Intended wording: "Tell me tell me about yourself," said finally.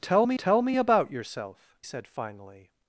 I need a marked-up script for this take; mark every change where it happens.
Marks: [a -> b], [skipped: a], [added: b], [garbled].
"Tell me tell me about yourself," said finally.